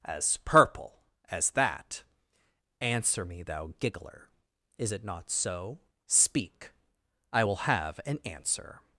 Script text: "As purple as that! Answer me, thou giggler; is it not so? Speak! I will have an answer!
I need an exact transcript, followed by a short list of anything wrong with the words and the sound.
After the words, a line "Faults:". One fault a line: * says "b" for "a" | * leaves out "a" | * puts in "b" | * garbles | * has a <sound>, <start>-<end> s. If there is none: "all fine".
"As purple as that! Answer me, thou giggler; is it not so? Speak! I will have an answer!
Faults:
all fine